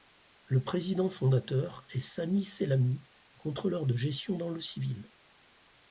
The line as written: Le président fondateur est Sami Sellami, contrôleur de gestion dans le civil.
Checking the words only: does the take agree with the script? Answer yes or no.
yes